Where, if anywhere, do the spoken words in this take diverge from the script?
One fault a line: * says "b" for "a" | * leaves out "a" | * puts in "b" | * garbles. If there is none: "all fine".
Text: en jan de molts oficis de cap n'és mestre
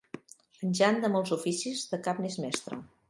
all fine